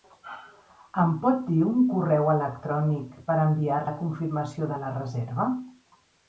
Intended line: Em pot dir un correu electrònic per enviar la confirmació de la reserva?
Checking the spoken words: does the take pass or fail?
pass